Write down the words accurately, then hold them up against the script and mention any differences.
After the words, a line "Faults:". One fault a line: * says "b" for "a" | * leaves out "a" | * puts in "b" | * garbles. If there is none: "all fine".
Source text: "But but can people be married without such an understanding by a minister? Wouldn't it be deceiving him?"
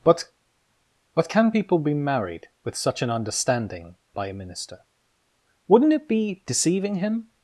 "But but can people be married with such an understanding by a minister? Wouldn't it be deceiving him?"
Faults:
* says "with" for "without"